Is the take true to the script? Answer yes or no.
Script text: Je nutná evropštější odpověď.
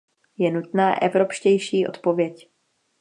yes